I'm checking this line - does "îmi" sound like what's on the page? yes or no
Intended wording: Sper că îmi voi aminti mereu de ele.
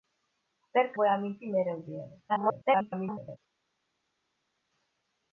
no